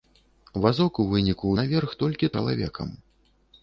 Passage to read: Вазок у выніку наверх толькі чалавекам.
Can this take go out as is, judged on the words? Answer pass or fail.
pass